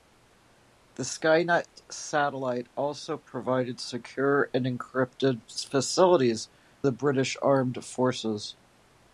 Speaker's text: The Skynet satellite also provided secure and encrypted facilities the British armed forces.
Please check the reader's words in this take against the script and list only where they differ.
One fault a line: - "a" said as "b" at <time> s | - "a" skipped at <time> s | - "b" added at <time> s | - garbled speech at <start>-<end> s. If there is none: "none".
none